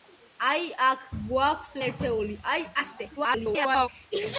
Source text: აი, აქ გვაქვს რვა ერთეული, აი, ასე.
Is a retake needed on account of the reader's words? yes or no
yes